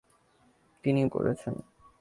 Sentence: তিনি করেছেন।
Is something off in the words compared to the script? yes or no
no